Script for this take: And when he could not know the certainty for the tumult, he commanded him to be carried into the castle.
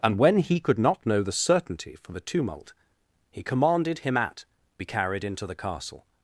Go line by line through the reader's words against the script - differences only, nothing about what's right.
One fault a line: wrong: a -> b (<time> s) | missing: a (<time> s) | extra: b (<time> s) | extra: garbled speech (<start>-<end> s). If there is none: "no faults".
wrong: to -> at (4.2 s)